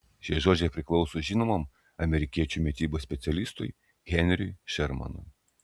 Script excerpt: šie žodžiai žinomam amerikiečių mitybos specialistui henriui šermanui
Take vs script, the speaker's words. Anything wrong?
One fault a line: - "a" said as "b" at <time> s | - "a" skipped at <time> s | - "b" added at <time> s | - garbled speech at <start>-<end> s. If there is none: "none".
- "priklauso" added at 0.8 s